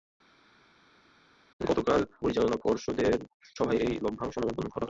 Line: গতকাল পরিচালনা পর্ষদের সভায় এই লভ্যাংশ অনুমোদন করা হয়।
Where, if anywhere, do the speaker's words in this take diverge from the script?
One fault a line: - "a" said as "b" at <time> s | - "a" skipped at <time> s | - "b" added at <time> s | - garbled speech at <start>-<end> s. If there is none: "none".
none